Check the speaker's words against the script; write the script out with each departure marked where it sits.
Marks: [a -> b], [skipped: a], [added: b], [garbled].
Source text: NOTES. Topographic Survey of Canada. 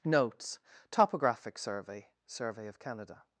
NOTES. Topographic Survey [added: Survey] of Canada.